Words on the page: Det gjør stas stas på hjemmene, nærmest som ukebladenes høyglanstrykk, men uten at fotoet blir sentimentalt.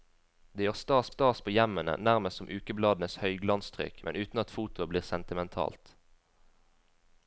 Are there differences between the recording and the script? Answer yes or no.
no